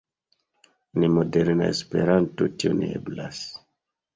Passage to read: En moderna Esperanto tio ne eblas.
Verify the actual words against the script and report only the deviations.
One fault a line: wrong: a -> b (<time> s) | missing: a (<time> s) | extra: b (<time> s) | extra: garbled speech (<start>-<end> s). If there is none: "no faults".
no faults